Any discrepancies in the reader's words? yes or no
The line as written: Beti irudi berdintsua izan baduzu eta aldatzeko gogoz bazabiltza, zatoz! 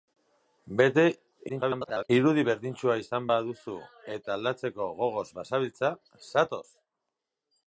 yes